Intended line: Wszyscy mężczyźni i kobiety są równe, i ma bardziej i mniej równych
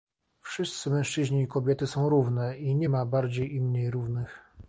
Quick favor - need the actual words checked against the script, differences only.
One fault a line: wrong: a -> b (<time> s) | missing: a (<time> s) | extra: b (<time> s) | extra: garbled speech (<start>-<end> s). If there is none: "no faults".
extra: nie (2.8 s)